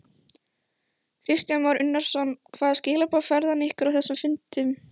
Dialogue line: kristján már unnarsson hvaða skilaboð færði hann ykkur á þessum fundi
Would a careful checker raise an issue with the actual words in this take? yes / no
no